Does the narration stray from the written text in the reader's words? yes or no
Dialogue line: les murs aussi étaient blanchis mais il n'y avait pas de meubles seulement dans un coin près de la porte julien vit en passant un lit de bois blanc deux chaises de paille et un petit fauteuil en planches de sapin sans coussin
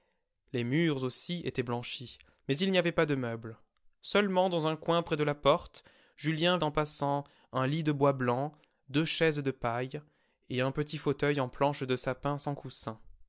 yes